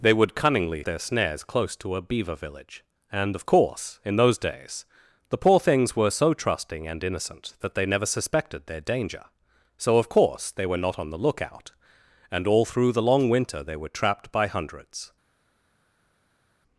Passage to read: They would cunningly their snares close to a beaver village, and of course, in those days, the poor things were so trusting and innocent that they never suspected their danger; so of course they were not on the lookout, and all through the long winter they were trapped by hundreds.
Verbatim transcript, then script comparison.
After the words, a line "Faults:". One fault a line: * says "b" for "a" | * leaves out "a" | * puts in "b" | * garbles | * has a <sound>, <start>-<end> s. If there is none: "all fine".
They would cunningly their snares close to a beaver village, and of course, in those days, the poor things were so trusting and innocent that they never suspected their danger; so of course they were not on the lookout, and all through the long winter they were trapped by hundreds.
Faults:
all fine